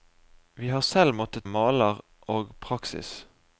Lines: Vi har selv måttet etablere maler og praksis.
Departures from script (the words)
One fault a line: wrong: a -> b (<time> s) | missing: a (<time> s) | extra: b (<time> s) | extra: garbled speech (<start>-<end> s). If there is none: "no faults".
missing: etablere (1.5 s)